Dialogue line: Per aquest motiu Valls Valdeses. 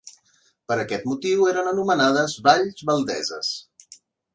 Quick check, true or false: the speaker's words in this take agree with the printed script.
false